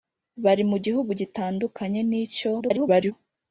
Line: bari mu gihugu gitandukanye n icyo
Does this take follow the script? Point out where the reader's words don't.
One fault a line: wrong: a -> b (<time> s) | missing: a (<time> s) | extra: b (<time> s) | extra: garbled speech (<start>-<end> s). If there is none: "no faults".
extra: garbled speech (2.6-3.1 s)